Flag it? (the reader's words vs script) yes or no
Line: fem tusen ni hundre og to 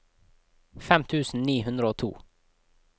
no